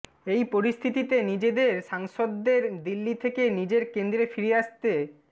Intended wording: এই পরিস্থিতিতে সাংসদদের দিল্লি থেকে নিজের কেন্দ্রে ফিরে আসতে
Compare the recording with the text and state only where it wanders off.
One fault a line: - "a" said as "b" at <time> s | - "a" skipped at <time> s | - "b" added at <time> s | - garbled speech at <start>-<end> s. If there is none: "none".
- "নিজেদের" added at 1.3 s